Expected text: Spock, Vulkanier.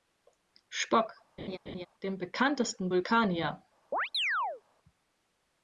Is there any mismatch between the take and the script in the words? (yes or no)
yes